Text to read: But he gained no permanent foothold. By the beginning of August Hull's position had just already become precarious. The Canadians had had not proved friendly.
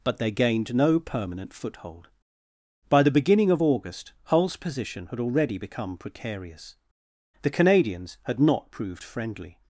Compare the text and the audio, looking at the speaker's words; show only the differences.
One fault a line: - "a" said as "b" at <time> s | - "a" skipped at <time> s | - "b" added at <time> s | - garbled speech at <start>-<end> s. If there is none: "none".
- "he" said as "they" at 0.2 s
- "just" skipped at 5.2 s
- "had" skipped at 8.4 s